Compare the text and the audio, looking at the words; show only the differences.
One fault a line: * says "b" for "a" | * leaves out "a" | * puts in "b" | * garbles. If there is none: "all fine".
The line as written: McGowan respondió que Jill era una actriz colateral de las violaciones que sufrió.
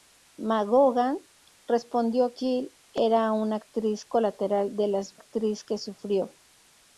* leaves out "que"
* says "actriz" for "violaciones"